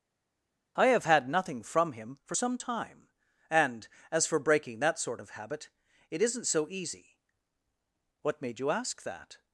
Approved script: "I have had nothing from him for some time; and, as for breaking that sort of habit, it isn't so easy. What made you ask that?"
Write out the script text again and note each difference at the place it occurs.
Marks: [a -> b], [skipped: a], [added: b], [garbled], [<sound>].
"I have had nothing from him for some time; and, as for breaking that sort of habit, it isn't so easy. What made you ask that?"